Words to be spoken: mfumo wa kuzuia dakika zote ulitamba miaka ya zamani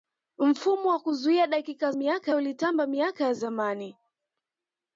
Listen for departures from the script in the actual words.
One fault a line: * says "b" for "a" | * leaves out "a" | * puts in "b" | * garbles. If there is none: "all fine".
* says "miaka" for "zote"